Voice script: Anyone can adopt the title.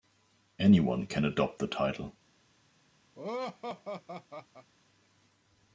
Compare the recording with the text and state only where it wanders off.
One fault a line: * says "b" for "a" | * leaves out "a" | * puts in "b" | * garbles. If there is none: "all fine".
all fine